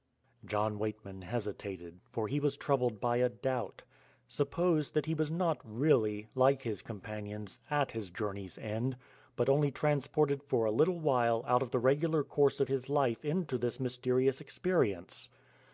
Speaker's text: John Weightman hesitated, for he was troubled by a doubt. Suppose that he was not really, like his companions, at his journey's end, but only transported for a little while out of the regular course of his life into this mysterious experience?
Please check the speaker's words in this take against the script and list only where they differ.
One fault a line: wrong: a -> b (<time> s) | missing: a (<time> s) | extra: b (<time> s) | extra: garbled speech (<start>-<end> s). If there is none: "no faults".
no faults